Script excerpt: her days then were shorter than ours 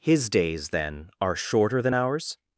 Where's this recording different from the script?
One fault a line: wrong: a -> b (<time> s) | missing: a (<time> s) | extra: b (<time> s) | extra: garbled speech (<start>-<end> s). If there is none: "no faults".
wrong: her -> his (0.0 s)
wrong: were -> are (1.2 s)